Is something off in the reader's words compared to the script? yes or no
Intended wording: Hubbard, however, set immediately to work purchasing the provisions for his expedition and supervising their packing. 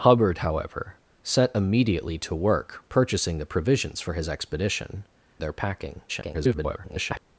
yes